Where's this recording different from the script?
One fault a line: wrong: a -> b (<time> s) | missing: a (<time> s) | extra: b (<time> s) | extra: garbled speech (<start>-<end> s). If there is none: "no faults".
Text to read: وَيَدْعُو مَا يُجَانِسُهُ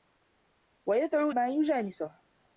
no faults